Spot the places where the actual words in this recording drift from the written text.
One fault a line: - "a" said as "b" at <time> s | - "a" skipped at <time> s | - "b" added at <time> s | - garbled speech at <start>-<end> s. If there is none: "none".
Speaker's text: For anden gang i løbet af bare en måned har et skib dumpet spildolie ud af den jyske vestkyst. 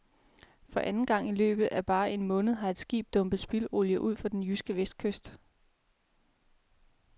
- "af" said as "for" at 4.2 s